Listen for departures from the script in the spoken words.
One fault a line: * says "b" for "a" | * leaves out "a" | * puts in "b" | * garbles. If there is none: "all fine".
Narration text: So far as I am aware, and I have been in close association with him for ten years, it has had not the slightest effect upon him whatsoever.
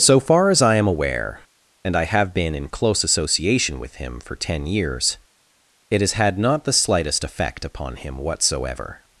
all fine